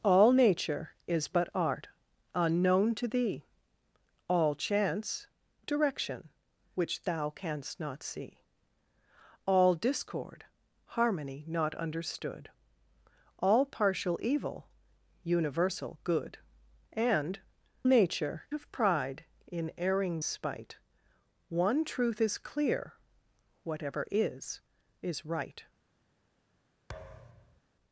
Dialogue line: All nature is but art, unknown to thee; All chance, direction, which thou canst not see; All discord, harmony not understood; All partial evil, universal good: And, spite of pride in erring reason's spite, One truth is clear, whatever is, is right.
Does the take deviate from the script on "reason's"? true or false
true